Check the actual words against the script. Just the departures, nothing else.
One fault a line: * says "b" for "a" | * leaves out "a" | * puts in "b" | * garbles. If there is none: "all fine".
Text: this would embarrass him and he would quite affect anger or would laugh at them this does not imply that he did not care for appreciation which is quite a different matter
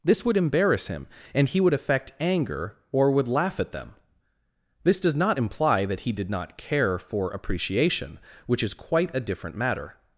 * leaves out "quite"